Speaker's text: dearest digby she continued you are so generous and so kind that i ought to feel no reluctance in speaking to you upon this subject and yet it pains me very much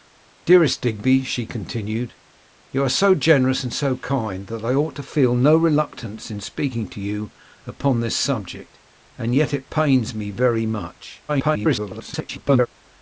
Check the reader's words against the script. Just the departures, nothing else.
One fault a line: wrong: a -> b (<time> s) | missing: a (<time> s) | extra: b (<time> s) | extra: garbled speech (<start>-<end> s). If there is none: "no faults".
extra: garbled speech (11.3-12.7 s)